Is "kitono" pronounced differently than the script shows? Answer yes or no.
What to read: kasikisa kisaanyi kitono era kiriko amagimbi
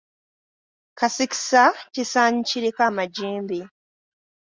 yes